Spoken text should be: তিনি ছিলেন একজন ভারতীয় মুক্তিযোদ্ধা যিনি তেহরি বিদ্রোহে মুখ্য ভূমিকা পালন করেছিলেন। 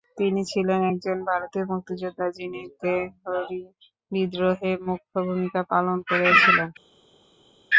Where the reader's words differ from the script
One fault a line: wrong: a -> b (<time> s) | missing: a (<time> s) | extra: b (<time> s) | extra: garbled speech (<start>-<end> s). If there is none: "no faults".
no faults